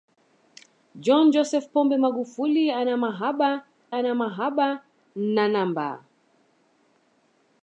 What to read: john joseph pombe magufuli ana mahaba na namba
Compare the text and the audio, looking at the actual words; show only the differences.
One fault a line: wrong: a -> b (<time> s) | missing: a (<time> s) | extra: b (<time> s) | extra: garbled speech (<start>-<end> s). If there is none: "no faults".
extra: ana mahaba (3.9 s)